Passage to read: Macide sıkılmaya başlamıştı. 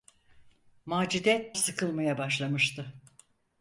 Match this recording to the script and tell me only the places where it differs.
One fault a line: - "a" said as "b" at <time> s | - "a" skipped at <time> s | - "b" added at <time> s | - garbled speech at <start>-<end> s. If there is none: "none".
none